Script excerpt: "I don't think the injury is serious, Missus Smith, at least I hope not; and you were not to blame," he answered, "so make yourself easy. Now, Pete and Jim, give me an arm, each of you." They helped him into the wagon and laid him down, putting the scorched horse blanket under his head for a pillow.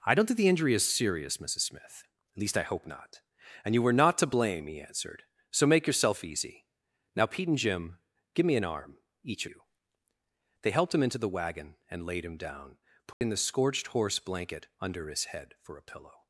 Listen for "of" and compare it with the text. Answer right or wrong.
wrong